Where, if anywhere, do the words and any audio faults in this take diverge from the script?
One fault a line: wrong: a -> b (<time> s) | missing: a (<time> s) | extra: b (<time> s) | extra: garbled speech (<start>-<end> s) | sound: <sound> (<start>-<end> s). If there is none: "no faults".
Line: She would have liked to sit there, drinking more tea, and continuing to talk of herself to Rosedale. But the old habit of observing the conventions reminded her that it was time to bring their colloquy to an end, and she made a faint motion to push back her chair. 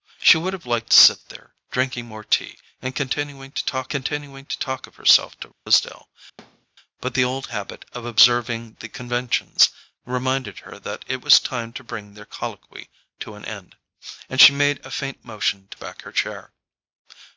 extra: continuing to talk (3.9 s)
sound: dropout (5.5-5.7 s)
sound: thud (6.4-6.7 s)
missing: push (15.8 s)